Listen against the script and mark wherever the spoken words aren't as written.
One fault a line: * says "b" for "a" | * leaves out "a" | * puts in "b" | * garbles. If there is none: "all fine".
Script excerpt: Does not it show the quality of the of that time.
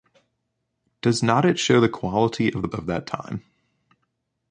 all fine